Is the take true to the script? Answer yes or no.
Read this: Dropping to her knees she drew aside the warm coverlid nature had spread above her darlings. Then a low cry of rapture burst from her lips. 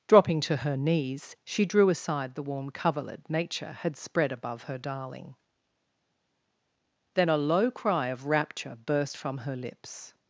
no